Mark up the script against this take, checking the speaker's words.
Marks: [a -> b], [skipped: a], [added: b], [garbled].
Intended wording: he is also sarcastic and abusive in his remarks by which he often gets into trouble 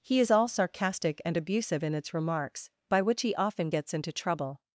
he is [also -> all] sarcastic and abusive in [his -> its] remarks by which he often gets into trouble